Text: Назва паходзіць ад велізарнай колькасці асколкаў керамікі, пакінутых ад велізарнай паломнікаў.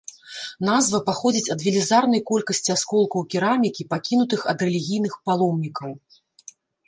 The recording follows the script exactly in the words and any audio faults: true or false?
false